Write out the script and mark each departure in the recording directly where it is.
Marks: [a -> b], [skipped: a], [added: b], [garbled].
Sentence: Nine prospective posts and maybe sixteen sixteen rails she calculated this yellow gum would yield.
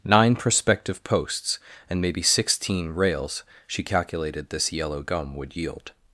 Nine prospective posts and maybe sixteen [skipped: sixteen] rails she calculated this yellow gum would yield.